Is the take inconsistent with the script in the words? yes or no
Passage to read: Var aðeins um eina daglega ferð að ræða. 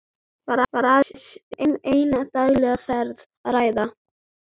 no